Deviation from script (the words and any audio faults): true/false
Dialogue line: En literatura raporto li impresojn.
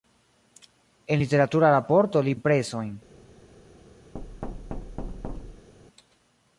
true